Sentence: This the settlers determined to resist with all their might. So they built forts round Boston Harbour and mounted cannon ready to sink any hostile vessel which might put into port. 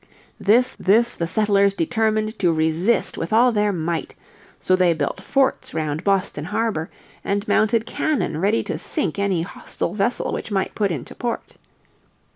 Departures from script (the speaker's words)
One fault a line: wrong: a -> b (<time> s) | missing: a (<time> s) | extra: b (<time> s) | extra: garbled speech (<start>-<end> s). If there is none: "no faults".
extra: this (0.8 s)